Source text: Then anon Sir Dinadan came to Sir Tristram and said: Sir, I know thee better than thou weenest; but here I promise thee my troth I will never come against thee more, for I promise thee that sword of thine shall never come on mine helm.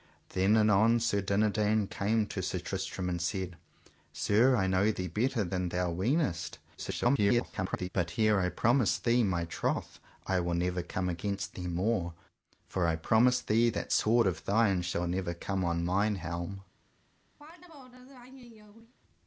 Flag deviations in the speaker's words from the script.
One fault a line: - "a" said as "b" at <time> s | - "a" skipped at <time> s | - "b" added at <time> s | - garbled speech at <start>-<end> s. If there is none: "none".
- garbled speech at 6.8-7.9 s